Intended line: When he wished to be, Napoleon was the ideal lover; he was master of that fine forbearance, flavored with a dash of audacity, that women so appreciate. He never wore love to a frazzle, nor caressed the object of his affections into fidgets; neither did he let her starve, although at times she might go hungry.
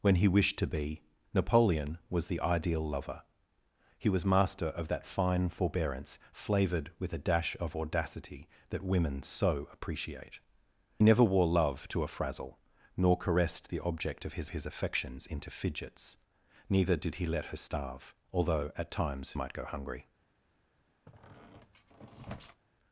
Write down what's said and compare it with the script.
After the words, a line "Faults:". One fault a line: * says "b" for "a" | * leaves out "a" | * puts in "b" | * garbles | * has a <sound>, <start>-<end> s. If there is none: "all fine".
When he wished to be, Napoleon was the ideal lover; he was master of that fine forbearance, flavored with a dash of audacity, that women so appreciate. Never wore love to a frazzle, nor caressed the object of his his affections into fidgets; neither did he let her starve, although at times might go hungry.
Faults:
* leaves out "He"
* puts in "his"
* leaves out "she"
* has a squeak, 21.1-22.6 s